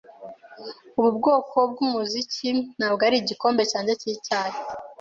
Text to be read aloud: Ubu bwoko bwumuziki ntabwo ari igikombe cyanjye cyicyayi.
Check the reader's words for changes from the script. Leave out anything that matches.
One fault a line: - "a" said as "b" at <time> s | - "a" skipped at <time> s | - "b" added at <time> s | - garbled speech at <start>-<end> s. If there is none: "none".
none